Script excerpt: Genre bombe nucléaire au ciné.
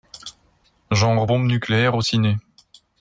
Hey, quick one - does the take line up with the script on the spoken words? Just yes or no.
yes